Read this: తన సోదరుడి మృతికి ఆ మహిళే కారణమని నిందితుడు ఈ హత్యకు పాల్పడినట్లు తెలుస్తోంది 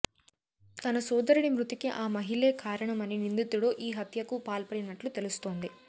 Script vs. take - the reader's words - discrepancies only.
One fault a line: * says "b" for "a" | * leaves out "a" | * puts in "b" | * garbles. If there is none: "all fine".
all fine